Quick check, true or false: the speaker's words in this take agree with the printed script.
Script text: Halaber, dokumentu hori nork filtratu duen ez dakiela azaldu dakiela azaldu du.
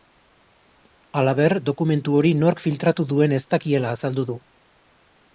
false